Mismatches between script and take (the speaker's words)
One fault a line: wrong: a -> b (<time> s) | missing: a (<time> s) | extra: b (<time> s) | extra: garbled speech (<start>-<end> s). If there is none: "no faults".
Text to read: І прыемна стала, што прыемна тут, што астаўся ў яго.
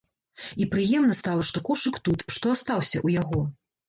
wrong: прыемна -> кошык (1.7 s)